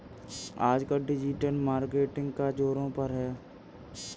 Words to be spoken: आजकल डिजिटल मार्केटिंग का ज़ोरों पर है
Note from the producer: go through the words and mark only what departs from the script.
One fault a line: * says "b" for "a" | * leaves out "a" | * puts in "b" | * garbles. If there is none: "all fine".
all fine